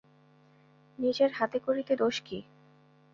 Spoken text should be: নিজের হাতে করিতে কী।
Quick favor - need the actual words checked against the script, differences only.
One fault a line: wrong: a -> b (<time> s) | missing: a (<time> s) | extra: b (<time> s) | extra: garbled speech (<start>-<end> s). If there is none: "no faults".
extra: দোষ (1.9 s)